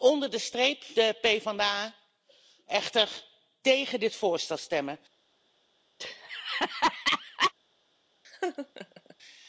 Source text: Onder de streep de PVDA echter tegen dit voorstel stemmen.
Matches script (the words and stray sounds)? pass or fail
fail